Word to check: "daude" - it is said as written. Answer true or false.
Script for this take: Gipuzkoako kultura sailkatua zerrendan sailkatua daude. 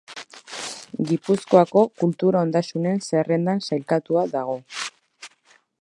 false